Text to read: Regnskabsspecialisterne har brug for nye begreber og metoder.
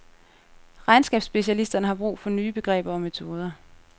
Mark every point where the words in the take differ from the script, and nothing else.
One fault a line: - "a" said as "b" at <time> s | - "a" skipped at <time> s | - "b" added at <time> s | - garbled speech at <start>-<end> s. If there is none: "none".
none